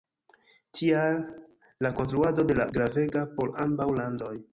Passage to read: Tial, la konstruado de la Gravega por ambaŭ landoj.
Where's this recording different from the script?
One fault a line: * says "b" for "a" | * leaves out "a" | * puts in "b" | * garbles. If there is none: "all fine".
all fine